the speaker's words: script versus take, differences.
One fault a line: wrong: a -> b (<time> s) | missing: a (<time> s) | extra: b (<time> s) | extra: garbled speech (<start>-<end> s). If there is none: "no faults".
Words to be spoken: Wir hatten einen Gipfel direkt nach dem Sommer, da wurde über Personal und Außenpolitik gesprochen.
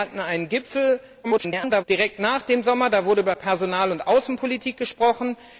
extra: garbled speech (1.2-1.8 s)